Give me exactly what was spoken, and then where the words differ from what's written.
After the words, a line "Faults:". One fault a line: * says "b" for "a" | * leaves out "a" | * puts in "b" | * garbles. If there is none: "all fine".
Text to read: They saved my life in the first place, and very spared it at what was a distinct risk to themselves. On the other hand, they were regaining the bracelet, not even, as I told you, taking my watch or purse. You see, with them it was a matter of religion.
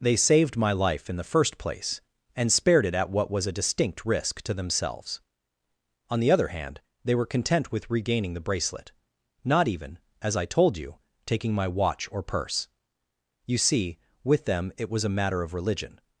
They saved my life in the first place, and spared it at what was a distinct risk to themselves. On the other hand, they were content with regaining the bracelet, not even, as I told you, taking my watch or purse. You see, with them it was a matter of religion.
Faults:
* leaves out "very"
* puts in "content with"